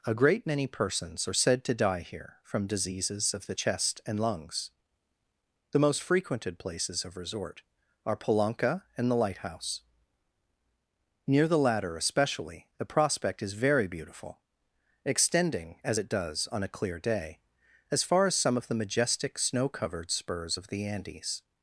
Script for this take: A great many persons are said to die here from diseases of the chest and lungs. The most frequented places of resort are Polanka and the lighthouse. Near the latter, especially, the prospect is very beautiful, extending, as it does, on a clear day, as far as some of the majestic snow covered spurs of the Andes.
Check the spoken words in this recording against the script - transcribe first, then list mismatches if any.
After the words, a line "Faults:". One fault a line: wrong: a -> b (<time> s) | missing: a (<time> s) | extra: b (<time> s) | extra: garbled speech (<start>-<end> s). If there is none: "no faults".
A great many persons are said to die here from diseases of the chest and lungs. The most frequented places of resort are Polanka and the lighthouse. Near the latter, especially, the prospect is very beautiful, extending, as it does, on a clear day, as far as some of the majestic snow covered spurs of the Andes.
Faults:
no faults